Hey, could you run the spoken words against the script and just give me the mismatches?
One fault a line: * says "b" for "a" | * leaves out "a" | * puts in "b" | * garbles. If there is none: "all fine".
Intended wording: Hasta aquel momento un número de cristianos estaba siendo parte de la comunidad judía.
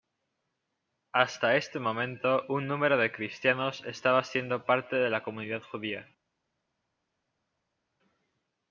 * says "este" for "aquel"